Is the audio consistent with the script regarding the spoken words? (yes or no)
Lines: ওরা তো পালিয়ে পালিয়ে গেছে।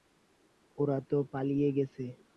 no